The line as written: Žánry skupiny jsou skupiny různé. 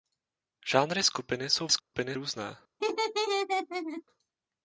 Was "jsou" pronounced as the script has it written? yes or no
yes